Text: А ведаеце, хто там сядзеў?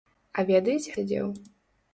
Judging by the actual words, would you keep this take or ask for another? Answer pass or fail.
fail